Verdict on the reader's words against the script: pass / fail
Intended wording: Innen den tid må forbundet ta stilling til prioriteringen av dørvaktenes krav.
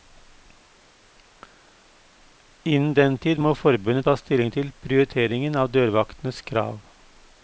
pass